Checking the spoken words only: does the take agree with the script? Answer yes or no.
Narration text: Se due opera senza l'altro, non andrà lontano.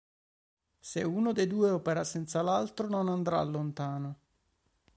no